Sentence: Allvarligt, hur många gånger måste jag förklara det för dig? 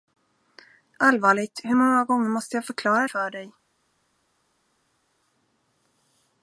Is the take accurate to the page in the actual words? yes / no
no